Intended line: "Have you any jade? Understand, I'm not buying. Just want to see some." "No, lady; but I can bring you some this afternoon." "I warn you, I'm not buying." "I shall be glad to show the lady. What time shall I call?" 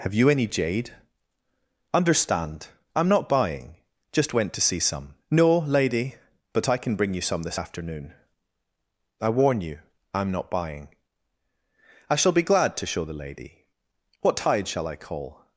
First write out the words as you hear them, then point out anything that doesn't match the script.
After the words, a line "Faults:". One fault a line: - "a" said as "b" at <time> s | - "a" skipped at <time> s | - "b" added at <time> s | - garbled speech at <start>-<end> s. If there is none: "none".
"Have you any jade? Understand, I'm not buying. Just went to see some." "No, lady; but I can bring you some this afternoon." "I warn you, I'm not buying." "I shall be glad to show the lady. What tide shall I call?"
Faults:
- "want" said as "went" at 4.3 s
- "time" said as "tide" at 14.4 s